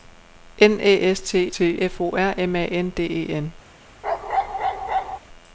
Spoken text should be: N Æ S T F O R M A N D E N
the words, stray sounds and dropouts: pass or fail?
fail